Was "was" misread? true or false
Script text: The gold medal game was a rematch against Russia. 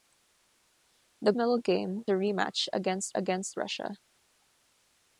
true